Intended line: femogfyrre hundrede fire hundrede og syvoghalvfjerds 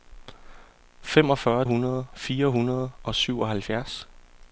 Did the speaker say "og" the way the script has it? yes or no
yes